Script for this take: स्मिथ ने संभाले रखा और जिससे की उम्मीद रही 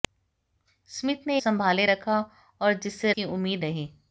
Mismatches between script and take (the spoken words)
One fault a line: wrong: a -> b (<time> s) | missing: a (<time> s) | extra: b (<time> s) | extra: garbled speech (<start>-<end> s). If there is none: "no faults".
no faults